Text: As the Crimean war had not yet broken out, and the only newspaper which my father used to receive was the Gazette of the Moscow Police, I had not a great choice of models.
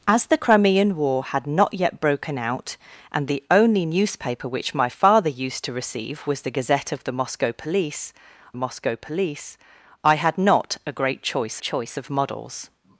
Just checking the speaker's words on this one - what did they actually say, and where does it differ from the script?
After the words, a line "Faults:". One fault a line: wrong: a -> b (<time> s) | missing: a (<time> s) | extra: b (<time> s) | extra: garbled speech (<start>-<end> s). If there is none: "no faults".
As the Crimean war had not yet broken out, and the only newspaper which my father used to receive was the Gazette of the Moscow Police Moscow Police, I had not a great choice choice of models.
Faults:
extra: Moscow Police (8.5 s)
extra: choice (11.6 s)